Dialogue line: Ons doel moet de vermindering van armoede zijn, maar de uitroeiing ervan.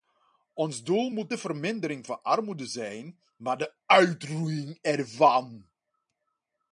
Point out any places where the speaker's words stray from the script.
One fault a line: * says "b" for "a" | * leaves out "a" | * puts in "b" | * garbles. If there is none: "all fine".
all fine